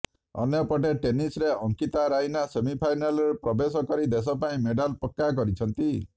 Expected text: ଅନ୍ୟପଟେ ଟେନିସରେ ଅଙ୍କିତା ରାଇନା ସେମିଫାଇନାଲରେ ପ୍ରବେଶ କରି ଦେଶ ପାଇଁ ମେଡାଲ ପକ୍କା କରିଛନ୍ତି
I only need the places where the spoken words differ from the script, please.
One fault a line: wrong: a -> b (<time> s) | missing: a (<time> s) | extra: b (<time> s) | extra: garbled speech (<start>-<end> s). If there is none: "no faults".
no faults